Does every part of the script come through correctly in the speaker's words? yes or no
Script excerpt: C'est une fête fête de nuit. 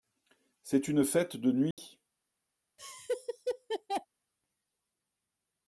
no